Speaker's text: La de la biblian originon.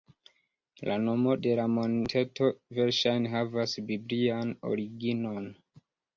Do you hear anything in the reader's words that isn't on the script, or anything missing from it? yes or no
yes